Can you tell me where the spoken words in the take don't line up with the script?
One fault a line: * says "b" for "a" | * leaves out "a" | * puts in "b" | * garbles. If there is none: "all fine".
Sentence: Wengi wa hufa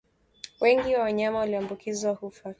* puts in "wanyama walioambukizwa"